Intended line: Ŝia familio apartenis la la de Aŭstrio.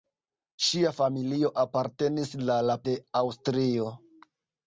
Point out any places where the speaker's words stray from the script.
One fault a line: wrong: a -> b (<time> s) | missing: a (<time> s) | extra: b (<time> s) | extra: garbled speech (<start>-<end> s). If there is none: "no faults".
no faults